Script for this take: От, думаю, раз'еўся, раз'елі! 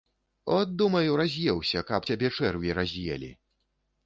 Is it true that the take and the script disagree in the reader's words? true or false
true